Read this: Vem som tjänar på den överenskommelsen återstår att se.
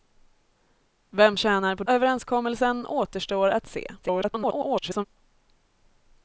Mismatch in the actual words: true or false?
true